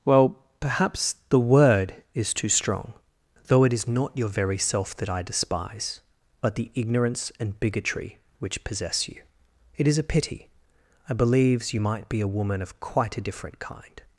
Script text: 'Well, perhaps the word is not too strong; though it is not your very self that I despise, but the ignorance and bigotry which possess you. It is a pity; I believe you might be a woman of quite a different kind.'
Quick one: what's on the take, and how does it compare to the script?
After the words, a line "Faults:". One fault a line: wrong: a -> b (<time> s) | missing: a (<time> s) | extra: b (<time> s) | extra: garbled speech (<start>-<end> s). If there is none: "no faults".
'Well, perhaps the word is too strong; though it is not your very self that I despise, but the ignorance and bigotry which possess you. It is a pity; I believes you might be a woman of quite a different kind.'
Faults:
missing: not (2.3 s)
wrong: believe -> believes (11.1 s)